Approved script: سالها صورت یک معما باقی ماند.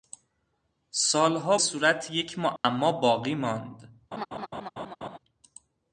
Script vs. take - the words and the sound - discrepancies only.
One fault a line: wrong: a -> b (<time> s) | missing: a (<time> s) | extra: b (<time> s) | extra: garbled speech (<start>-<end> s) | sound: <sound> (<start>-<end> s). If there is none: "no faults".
sound: dropout (2.6-2.6 s)
sound: laugh (4.1-5.2 s)